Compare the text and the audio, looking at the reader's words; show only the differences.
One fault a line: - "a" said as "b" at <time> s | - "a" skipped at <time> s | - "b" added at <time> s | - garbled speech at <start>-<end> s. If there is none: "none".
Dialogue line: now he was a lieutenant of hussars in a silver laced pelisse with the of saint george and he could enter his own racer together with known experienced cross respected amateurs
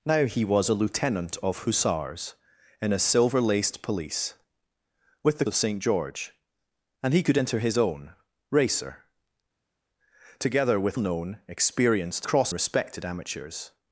none